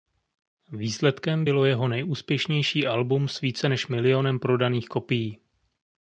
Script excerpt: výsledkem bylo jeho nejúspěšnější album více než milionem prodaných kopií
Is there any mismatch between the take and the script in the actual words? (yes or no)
yes